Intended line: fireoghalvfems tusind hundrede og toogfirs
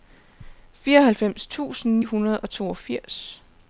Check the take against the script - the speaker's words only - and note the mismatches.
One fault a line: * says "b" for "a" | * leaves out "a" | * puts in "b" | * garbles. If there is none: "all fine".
all fine